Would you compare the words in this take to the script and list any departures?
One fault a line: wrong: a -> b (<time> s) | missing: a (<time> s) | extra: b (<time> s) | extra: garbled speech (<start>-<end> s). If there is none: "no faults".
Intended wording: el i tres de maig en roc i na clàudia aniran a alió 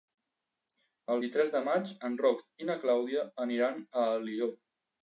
no faults